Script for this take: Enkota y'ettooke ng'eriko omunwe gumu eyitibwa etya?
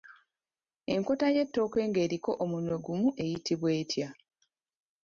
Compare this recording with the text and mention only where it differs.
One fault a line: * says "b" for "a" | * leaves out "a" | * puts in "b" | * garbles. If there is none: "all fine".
all fine